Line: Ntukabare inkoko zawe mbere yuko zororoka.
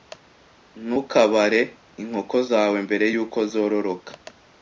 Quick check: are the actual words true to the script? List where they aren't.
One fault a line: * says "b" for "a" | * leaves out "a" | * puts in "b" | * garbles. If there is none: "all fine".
all fine